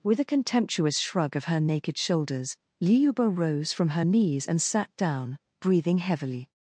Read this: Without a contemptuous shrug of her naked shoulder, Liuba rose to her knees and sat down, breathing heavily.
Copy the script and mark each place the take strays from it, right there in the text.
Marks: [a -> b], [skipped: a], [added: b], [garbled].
[Without -> With] a contemptuous shrug of her naked [shoulder, -> shoulders] Liuba rose [to -> from] her knees and sat down, breathing heavily.